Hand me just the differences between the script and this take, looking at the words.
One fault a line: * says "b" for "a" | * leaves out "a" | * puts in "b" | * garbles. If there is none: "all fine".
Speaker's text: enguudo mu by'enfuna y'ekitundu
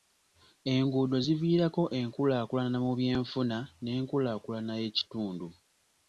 * puts in "ziviirako enkulaakulana"
* puts in "n'enkulaakulana"